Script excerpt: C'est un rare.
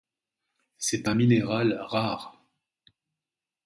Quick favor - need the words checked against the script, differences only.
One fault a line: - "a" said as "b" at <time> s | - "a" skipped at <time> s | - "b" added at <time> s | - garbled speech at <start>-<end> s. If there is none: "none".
- "minéral" added at 1.1 s